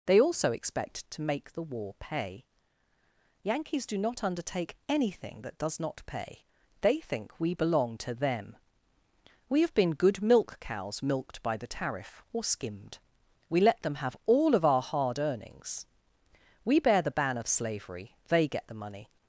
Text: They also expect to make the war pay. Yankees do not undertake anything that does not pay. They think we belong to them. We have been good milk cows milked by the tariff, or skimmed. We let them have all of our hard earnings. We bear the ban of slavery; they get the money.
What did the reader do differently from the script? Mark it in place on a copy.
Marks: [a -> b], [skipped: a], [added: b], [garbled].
They also expect to make the war pay. Yankees do not undertake anything that does not pay. They think we belong to them. We have been good milk cows milked by the tariff, or skimmed. We let them have all of our hard earnings. We bear the ban of slavery; they get the money.